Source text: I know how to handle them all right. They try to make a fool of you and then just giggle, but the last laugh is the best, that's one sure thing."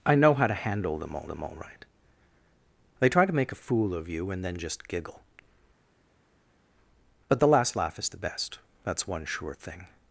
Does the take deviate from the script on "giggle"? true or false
false